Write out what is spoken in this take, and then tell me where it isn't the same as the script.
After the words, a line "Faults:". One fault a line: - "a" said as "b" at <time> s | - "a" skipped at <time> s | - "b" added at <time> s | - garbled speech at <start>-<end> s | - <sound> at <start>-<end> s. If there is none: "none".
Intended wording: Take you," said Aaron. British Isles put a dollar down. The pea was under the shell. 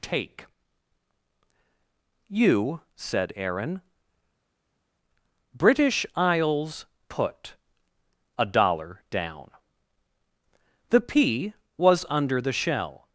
Take you," said Aaron. British Isles put a dollar down. The pea was under the shell.
Faults:
none